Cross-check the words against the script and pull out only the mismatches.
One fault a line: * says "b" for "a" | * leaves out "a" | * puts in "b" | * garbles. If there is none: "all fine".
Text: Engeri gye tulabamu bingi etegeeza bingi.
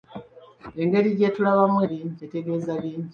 all fine